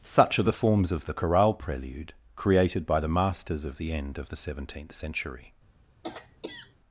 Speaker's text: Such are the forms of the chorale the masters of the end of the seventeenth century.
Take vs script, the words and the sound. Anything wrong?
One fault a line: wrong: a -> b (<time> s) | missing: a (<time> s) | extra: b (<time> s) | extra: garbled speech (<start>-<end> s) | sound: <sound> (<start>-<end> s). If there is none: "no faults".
extra: prelude created by (1.5 s)
sound: throat clearing (6.0-6.8 s)